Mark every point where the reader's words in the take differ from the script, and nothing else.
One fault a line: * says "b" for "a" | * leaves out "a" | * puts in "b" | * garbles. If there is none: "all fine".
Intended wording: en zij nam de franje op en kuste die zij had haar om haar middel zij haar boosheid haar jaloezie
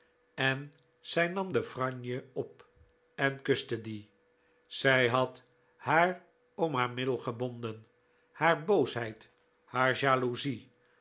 * says "gebonden" for "zij"